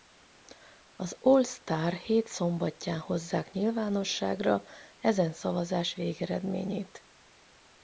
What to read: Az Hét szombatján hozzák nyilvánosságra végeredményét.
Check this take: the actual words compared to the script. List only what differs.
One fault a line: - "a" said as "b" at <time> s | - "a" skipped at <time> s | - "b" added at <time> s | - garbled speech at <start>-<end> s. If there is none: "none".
- "All Star" added at 1.2 s
- "ezen szavazás" added at 5.0 s